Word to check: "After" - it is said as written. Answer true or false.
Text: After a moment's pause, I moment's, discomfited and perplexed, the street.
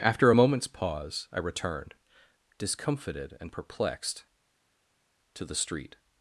true